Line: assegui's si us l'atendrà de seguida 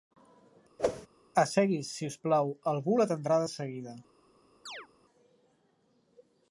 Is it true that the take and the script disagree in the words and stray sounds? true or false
true